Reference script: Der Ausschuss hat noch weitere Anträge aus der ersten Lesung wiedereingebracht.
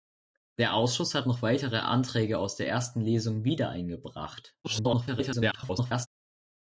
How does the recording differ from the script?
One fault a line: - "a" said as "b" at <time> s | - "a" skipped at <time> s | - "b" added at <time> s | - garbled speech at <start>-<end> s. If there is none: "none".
- garbled speech at 4.6-6.1 s